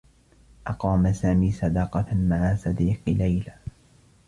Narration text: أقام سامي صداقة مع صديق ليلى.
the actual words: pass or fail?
pass